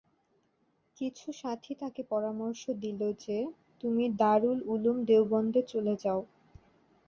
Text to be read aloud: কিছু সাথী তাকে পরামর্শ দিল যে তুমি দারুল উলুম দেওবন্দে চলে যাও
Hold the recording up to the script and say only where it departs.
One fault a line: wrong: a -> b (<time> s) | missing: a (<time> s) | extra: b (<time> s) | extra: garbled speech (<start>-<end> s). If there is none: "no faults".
no faults